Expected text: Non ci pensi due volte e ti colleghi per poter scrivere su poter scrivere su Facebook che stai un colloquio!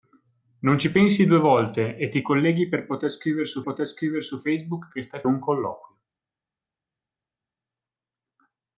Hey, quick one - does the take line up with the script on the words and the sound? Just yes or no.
yes